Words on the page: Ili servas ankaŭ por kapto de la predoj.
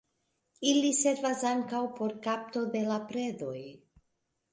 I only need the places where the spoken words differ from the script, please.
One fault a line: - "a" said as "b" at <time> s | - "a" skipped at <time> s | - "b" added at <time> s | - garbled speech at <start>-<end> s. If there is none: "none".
none